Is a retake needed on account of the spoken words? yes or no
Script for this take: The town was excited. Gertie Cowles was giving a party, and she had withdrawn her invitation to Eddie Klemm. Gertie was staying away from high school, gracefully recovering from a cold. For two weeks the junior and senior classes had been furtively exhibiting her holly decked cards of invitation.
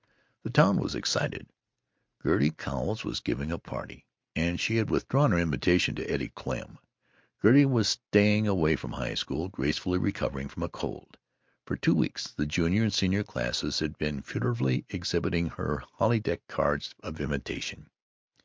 no